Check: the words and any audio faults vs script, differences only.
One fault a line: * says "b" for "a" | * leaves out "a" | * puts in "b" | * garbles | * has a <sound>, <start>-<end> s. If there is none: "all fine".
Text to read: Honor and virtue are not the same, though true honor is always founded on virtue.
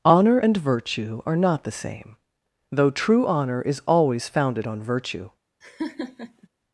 * has a laugh, 5.6-6.5 s